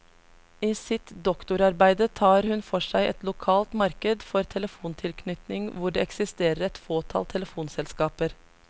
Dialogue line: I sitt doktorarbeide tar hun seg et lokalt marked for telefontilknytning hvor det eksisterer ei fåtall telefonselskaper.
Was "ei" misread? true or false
true